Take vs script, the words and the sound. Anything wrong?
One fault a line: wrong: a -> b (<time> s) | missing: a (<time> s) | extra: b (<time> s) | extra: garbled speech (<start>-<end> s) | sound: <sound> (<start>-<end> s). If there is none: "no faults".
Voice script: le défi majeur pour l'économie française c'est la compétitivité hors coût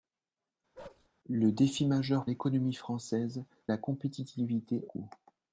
sound: bark (0.7-1.1 s)
missing: pour (2.3 s)
missing: c'est (3.4 s)
missing: hors (4.9 s)